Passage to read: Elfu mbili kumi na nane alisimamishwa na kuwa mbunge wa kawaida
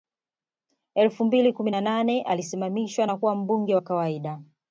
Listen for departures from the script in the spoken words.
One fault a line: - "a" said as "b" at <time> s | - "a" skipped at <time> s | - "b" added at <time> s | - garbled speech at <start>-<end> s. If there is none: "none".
none